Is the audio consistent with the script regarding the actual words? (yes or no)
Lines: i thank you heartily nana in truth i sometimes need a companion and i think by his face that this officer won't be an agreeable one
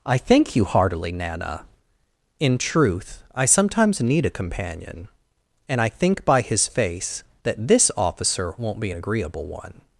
yes